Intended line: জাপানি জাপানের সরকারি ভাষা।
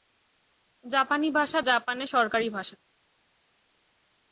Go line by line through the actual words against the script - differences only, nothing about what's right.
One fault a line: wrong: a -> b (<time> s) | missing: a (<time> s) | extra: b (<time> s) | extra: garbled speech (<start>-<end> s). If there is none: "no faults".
extra: ভাষা (1.3 s)